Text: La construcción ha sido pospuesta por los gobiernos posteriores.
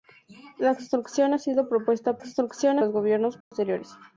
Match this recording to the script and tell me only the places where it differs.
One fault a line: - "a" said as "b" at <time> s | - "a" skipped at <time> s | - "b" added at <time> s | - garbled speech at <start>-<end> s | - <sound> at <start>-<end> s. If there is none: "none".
- "por" said as "construcción" at 2.2 s
- dropout at 3.4-3.5 s